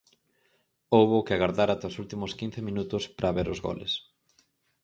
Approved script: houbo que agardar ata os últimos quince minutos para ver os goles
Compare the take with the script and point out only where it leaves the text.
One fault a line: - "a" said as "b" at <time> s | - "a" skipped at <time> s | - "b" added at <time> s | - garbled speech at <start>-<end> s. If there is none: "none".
none